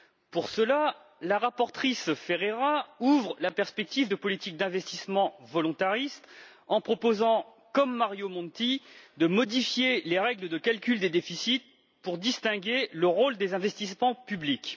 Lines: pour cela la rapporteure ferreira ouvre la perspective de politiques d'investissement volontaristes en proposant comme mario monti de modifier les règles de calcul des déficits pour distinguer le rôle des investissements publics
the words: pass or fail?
pass